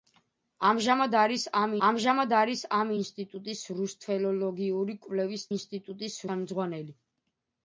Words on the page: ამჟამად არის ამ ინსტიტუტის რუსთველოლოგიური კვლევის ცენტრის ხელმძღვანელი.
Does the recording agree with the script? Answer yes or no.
no